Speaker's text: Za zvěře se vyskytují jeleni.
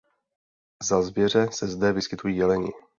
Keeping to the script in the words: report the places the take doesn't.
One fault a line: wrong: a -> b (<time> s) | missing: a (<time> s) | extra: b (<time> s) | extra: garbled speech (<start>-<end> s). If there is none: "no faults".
extra: zde (1.7 s)